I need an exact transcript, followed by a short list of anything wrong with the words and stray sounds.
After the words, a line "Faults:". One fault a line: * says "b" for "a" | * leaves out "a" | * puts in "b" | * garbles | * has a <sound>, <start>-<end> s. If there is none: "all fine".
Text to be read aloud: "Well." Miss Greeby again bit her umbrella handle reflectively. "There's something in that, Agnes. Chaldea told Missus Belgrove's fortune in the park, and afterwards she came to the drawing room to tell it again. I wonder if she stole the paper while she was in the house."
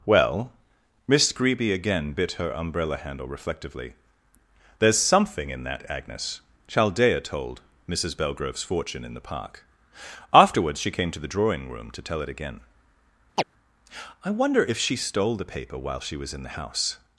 "Well." Miss Greeby again bit her umbrella handle reflectively. "There's something in that, Agnes. Chaldea told Missus Belgrove's fortune in the park, afterwards she came to the drawing room to tell it again. I wonder if she stole the paper while she was in the house."
Faults:
* leaves out "and"
* has a chirp, 13.4-13.4 s